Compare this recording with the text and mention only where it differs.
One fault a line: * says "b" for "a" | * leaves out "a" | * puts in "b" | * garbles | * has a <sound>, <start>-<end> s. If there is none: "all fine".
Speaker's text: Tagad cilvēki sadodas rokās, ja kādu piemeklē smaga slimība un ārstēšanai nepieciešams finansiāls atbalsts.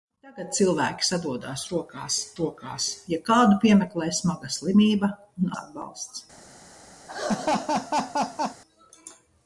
* puts in "rokās"
* leaves out "ārstēšanai nepieciešams finansiāls"
* has a laugh, 7.1-8.6 s